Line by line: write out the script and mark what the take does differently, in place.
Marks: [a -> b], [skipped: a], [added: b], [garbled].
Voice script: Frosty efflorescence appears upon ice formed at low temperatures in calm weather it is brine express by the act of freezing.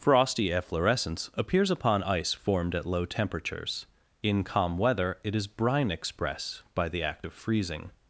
Frosty efflorescence appears upon ice formed at low temperatures in calm weather it is brine express by the act of freezing.